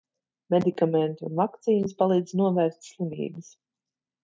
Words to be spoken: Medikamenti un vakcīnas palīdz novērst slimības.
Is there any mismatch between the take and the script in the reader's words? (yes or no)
no